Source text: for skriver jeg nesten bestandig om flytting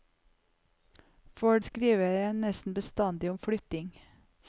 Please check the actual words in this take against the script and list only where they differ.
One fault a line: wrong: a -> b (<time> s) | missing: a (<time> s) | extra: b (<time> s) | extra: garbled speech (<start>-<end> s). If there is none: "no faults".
no faults